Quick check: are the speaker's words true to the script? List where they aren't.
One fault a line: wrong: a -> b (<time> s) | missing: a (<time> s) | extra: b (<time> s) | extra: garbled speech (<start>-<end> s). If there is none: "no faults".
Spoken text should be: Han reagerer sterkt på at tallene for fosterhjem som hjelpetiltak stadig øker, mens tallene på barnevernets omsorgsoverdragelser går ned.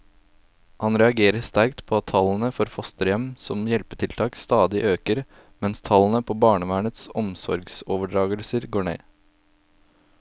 no faults